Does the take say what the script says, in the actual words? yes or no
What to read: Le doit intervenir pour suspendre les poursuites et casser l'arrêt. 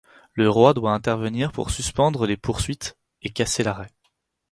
no